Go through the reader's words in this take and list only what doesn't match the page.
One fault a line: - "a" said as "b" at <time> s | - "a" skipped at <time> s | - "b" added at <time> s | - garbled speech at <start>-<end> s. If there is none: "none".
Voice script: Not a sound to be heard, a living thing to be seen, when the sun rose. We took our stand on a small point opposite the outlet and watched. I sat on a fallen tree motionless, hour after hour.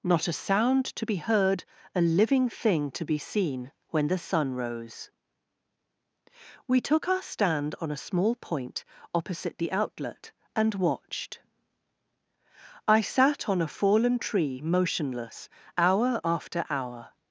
none